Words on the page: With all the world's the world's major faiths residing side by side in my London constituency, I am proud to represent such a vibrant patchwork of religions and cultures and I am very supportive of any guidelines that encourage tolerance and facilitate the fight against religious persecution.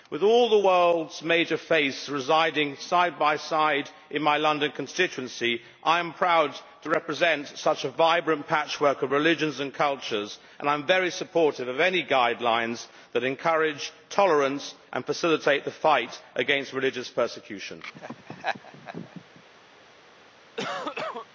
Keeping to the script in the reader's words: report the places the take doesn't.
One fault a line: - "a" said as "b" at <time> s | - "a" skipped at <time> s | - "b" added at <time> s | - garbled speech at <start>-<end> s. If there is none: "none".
- "the world's" skipped at 1.2 s